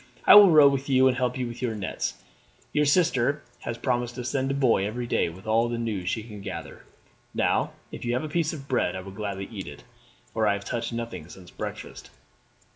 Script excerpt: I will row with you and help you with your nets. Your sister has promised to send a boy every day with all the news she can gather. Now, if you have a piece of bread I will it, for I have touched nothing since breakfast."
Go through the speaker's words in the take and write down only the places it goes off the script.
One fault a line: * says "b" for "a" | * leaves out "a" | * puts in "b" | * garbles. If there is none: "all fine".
* puts in "gladly eat"